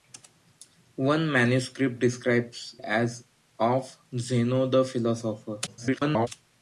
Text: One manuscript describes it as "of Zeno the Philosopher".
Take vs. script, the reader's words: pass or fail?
fail